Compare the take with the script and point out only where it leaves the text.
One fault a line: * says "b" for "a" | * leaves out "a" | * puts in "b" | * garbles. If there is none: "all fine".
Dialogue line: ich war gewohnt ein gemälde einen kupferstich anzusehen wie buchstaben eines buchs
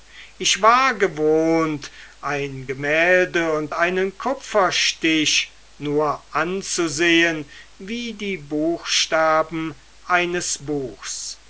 * puts in "und"
* puts in "nur"
* puts in "die"